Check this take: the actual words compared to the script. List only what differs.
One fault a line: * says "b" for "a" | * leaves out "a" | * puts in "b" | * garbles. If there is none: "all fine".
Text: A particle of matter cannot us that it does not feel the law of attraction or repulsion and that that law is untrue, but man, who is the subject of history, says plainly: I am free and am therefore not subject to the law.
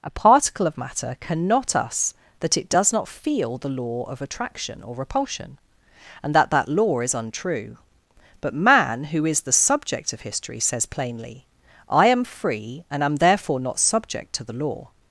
all fine